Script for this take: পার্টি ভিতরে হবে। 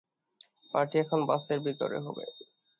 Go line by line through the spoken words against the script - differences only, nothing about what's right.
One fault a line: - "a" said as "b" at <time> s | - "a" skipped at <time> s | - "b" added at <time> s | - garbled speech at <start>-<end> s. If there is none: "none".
- "এখন বাসের" added at 1.0 s